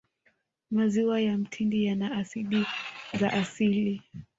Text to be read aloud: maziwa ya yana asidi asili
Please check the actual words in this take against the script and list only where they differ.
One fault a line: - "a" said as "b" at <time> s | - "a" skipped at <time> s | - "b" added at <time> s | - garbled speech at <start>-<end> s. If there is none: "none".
- "mtindi" added at 1.4 s
- "za" added at 3.1 s